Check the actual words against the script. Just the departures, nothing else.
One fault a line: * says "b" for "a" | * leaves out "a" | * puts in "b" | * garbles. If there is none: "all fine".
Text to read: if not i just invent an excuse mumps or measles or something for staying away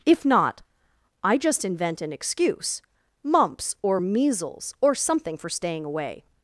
all fine